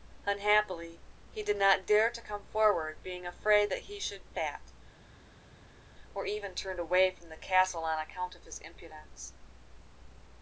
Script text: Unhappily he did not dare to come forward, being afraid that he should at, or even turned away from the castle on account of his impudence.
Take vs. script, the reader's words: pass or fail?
pass